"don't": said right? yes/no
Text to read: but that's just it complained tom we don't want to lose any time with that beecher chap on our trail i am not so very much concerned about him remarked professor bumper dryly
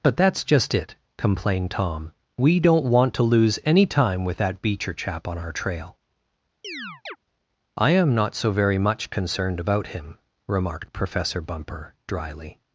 yes